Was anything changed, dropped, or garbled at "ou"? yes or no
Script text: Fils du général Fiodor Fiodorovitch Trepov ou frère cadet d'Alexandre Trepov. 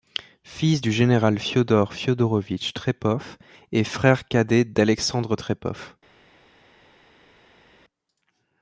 yes